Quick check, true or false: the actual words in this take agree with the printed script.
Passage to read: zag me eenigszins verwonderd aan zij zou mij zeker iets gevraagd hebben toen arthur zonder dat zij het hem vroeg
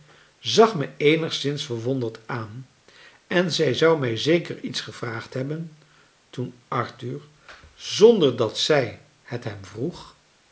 false